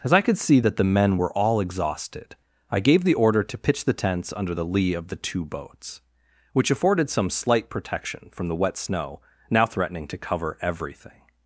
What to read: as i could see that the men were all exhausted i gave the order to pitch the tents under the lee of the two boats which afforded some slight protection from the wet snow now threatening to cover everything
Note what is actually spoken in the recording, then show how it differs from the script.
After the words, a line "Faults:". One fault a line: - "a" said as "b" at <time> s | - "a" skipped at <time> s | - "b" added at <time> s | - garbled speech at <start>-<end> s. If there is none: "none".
as i could see that the men were all exhausted i gave the order to pitch the tents under the lee of the two boats which afforded some slight protection from the wet snow now threatening to cover everything
Faults:
none